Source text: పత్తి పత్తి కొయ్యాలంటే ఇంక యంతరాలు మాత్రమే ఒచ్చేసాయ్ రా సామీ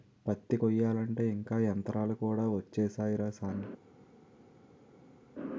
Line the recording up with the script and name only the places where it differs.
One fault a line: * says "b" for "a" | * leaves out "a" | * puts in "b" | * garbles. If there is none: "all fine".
* leaves out "పత్తి"
* says "కూడా" for "మాత్రమే"